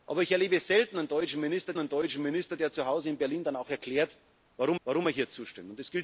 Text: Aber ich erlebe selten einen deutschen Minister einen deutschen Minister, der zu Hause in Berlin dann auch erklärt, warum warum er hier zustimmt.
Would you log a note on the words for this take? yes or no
no